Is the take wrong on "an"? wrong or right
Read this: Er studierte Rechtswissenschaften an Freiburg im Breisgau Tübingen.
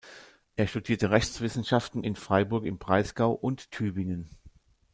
wrong